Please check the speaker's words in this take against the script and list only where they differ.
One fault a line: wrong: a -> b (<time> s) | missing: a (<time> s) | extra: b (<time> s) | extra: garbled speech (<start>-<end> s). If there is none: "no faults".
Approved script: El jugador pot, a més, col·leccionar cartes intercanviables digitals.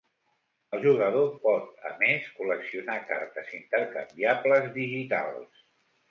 no faults